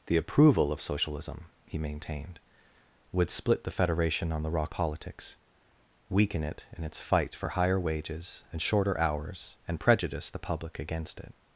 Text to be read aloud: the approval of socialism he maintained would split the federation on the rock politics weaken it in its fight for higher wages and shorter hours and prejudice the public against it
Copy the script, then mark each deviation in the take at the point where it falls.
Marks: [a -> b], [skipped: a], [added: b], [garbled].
the approval of socialism he maintained would split the federation on the rock politics weaken it in its fight for higher wages and shorter hours and prejudice the public against it